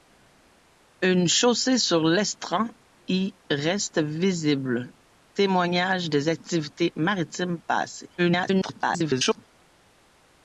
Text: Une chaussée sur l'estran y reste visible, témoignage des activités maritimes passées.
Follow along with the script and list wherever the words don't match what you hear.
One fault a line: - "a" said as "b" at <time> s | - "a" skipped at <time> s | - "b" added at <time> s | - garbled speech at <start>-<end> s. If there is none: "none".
- garbled speech at 8.2-9.5 s